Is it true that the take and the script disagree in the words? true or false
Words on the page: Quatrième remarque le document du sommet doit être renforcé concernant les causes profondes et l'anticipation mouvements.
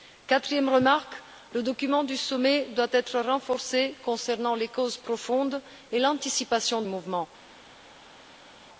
false